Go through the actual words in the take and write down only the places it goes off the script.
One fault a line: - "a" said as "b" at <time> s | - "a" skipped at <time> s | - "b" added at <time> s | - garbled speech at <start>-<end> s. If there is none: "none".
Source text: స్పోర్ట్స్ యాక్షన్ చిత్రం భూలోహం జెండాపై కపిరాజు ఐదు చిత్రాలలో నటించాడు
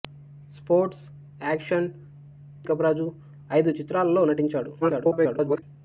- "చిత్రం భూలోహం జెండాపై" skipped at 1.9 s
- garbled speech at 4.8-5.6 s